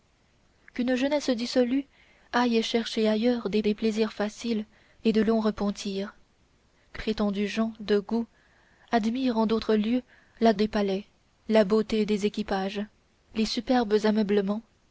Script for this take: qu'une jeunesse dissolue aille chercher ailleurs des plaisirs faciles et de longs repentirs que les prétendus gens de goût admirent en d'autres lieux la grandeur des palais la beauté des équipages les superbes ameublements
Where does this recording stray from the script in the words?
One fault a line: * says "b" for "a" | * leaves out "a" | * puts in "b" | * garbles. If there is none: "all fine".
* puts in "des"
* leaves out "les"
* leaves out "grandeur"